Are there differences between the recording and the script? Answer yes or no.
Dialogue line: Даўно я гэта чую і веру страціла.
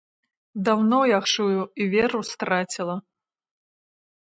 yes